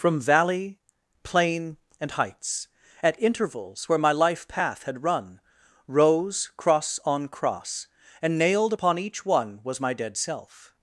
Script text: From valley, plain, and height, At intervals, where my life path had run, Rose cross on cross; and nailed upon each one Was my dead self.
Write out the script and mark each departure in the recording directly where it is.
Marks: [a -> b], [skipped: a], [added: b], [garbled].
From valley, plain, and [height, -> heights] At intervals, where my life path had run, Rose cross on cross; and nailed upon each one Was my dead self.